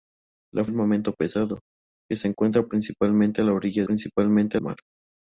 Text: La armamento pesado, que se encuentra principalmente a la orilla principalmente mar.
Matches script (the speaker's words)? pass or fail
pass